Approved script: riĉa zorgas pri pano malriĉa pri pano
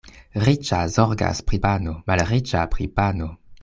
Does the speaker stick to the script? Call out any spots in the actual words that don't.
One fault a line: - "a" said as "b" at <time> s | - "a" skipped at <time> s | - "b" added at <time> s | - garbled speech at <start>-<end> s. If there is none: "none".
none